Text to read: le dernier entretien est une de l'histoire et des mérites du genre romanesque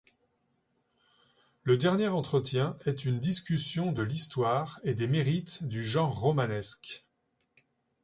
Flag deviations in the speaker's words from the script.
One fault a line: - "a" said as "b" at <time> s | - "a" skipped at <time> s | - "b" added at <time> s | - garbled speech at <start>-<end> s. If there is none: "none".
- "discussion" added at 3.2 s